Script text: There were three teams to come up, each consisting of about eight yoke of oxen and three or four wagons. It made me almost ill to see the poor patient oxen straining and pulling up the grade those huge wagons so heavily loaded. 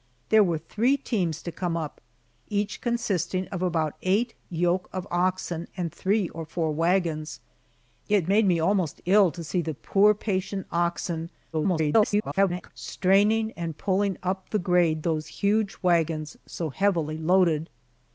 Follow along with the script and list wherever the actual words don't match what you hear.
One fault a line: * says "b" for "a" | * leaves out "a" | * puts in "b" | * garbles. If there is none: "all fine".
* garbles